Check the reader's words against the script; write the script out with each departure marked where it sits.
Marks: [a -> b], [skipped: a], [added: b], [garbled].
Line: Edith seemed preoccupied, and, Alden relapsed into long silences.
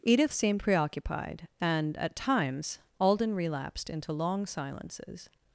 Edith seemed preoccupied, and, [added: at times] Alden relapsed into long silences.